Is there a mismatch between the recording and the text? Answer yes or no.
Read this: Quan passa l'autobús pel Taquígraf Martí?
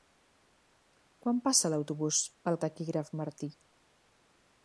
no